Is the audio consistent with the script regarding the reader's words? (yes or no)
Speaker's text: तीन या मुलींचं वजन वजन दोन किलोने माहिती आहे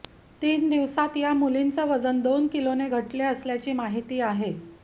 no